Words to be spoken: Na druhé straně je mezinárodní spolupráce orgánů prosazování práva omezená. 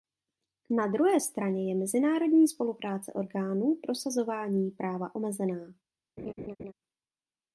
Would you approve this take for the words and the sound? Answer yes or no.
no